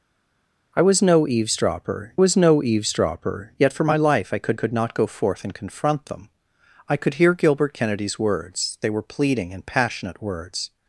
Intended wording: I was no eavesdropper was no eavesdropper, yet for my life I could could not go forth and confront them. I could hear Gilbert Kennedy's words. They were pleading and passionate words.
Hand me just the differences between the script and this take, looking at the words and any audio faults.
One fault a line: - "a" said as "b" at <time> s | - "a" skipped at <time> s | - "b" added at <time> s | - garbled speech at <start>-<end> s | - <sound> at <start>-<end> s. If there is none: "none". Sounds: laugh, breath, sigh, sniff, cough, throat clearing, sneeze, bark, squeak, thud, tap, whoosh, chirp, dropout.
none